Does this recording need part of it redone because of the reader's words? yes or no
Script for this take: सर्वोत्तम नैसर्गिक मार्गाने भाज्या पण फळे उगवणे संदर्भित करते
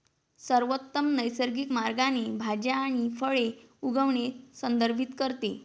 yes